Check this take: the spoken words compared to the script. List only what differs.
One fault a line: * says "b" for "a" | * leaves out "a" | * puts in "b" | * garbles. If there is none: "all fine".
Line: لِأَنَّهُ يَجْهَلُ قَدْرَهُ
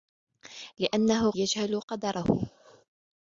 all fine